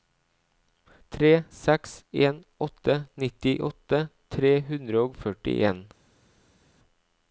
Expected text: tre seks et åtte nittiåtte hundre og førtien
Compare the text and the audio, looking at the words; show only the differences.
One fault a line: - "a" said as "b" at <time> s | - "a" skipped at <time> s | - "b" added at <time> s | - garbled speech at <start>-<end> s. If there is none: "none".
- "et" said as "en" at 2.3 s
- "tre" added at 4.4 s